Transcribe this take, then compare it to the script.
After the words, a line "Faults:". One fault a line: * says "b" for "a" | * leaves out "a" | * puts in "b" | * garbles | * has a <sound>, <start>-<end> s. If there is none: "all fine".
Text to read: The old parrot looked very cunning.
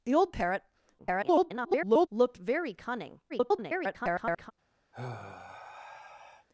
The old parrot [garbled] looked very cunning. [garbled]
Faults:
* garbles
* garbles
* has a sigh, 4.9-6.5 s